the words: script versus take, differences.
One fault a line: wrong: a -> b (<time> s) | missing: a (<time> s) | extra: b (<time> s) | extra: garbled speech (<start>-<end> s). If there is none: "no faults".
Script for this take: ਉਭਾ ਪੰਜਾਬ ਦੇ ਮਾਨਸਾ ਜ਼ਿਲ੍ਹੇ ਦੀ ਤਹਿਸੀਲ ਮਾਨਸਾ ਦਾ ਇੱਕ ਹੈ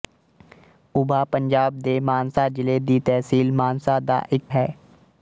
no faults